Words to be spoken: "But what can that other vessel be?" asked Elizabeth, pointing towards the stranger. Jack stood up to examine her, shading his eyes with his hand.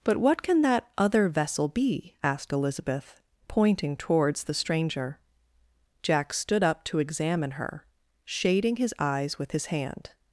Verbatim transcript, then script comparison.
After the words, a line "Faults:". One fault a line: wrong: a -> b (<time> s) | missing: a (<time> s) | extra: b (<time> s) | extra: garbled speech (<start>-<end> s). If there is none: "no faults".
"But what can that other vessel be?" asked Elizabeth, pointing towards the stranger. Jack stood up to examine her, shading his eyes with his hand.
Faults:
no faults